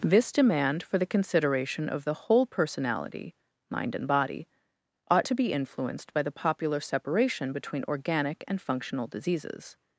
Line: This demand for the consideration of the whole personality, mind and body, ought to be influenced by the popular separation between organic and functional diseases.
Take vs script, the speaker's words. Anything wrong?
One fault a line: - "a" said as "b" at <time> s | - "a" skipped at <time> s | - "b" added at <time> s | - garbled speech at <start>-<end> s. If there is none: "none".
none